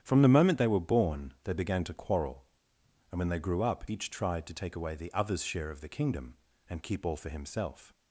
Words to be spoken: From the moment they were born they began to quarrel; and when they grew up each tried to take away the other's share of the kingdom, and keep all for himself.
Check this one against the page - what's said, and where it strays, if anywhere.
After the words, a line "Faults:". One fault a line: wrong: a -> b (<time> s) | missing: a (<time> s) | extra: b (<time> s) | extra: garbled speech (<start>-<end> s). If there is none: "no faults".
From the moment they were born they began to quarrel; and when they grew up each tried to take away the other's share of the kingdom, and keep all for himself.
Faults:
no faults